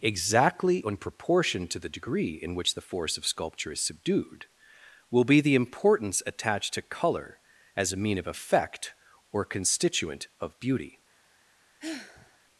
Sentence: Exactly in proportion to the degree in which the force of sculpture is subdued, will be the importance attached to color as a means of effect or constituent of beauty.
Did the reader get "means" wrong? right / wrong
wrong